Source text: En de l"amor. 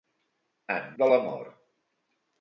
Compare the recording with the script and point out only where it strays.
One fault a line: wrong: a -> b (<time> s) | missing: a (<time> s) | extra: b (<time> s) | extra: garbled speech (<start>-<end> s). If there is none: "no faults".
no faults